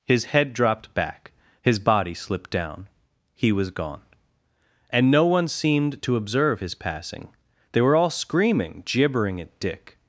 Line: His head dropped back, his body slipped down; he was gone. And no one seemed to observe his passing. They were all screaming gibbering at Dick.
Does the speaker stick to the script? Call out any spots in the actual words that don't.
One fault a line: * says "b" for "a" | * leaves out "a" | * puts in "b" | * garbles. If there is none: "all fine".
all fine